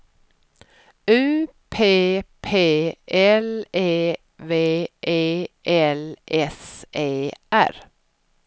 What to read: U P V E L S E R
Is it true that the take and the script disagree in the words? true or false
true